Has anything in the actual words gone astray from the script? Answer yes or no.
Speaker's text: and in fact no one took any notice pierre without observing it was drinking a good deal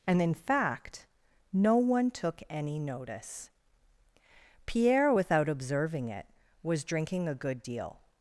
no